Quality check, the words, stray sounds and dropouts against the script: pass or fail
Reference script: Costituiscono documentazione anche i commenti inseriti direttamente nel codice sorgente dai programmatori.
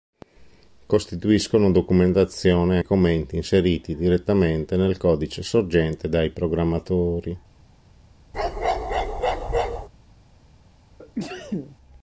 fail